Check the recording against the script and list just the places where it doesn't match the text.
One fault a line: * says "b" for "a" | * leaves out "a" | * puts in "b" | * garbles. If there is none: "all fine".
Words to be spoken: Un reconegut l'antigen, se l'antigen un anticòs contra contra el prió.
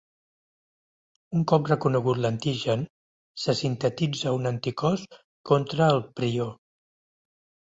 * puts in "cop"
* says "sintetitza" for "l'antigen"
* leaves out "contra"